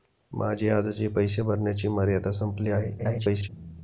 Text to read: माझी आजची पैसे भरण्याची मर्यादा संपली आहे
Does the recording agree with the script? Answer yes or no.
no